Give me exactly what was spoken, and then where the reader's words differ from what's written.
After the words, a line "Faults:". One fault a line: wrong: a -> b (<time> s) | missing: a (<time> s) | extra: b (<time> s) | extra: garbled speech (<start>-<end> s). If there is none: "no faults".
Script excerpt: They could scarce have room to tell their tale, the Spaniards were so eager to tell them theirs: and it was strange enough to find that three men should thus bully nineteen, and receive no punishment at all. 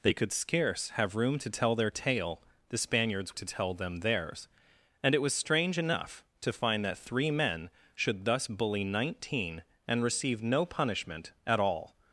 They could scarce have room to tell their tale, the Spaniards to tell them theirs: and it was strange enough to find that three men should thus bully nineteen, and receive no punishment at all.
Faults:
missing: were so eager (3.4 s)